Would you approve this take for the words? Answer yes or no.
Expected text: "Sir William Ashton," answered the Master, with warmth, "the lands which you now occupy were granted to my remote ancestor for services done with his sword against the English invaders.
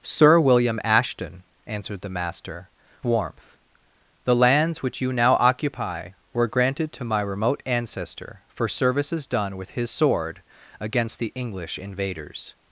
no